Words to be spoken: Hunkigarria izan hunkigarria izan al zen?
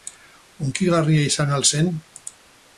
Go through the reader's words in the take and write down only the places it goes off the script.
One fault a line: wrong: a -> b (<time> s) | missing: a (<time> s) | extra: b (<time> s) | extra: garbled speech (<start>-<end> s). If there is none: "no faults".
missing: hunkigarria izan (1.5 s)